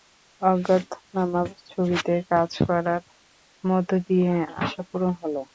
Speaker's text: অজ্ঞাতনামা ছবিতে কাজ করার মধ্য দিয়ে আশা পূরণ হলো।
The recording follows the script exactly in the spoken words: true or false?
true